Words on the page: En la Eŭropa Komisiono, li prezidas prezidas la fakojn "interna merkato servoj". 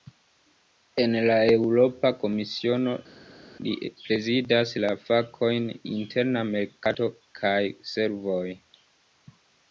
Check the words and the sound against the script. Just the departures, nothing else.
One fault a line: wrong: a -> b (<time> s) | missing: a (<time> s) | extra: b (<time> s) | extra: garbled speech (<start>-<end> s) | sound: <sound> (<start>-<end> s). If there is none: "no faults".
missing: prezidas (4.7 s)
extra: kaj (7.4 s)